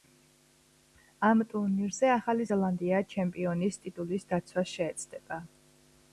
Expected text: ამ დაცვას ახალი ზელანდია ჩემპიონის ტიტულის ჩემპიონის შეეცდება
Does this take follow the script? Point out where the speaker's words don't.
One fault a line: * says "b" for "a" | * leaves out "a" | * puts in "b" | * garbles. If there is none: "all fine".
* says "ტურნირზე" for "დაცვას"
* says "დაცვას" for "ჩემპიონის"